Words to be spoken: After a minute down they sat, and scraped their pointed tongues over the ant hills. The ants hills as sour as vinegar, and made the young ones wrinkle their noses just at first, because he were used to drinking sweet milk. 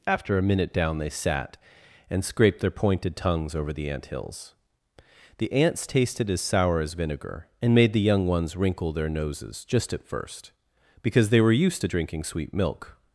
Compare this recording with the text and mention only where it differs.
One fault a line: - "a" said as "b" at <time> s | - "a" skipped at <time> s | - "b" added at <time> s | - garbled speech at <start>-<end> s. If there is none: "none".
- "hills" said as "tasted" at 5.9 s
- "he" said as "they" at 11.3 s